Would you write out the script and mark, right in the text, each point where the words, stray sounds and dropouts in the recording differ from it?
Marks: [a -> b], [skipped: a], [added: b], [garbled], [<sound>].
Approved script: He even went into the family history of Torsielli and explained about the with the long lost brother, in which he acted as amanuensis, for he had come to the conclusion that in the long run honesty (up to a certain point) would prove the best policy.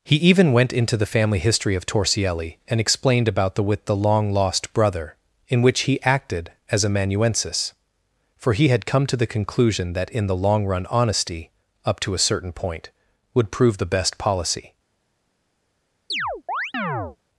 He even went into the family history of Torsielli and explained about the with the long lost brother, in which he acted as amanuensis, for he had come to the conclusion that in the long run honesty (up to a certain point) would prove the best policy. [chirp]